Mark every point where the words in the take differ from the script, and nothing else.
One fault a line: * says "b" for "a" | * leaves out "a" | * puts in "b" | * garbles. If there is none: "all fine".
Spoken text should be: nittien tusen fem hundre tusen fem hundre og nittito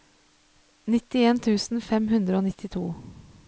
* leaves out "tusen fem hundre"